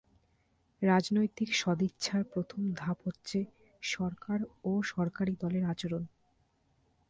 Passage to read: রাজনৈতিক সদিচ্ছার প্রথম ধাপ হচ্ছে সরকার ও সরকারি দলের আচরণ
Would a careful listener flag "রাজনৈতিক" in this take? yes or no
no